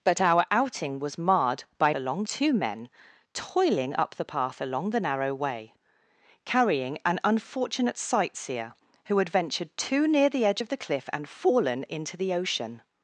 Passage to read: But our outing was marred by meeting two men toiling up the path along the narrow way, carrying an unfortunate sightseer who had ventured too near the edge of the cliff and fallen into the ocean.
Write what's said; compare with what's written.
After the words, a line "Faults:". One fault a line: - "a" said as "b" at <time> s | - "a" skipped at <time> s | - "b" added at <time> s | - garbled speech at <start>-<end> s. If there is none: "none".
But our outing was marred by along two men toiling up the path along the narrow way, carrying an unfortunate sightseer who had ventured too near the edge of the cliff and fallen into the ocean.
Faults:
- "meeting" said as "along" at 1.9 s